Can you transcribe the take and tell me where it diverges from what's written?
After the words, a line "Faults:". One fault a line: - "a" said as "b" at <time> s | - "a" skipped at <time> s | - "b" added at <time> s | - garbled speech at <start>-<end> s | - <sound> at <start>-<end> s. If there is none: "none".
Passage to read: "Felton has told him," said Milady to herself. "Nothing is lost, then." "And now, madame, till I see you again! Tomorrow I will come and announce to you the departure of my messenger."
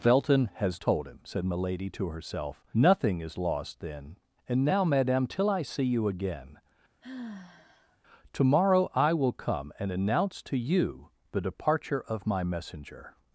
"Felton has told him," said Milady to herself. "Nothing is lost, then." "And now, madame, till I see you again! Tomorrow I will come and announce to you the departure of my messenger."
Faults:
- sigh at 7.0-8.0 s